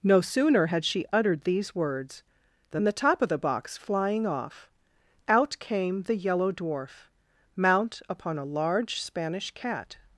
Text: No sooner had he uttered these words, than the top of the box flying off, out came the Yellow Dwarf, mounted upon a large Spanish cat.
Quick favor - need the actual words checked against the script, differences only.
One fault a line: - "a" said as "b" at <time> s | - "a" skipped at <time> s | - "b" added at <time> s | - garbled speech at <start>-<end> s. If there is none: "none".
- "he" said as "she" at 0.8 s
- "mounted" said as "mount" at 7.6 s